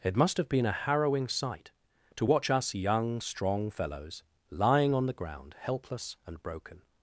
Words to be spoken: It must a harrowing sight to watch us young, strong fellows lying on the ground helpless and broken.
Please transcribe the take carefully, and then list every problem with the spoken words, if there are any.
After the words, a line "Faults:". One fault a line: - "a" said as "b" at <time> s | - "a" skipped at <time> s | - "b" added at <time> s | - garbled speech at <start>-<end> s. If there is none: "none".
It must have been a harrowing sight to watch us young, strong fellows lying on the ground helpless and broken.
Faults:
- "have been" added at 0.4 s